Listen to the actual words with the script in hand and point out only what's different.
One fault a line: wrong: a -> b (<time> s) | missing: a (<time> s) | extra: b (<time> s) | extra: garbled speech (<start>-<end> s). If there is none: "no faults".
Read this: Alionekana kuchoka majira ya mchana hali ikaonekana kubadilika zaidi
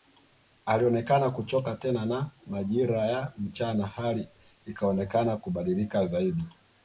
extra: tena na (1.8 s)